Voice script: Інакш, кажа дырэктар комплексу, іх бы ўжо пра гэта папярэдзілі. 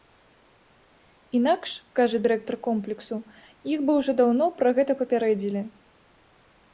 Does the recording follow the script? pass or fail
fail